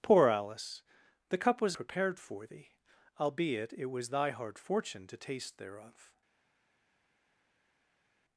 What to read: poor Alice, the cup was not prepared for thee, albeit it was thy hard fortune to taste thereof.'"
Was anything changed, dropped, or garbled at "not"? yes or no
yes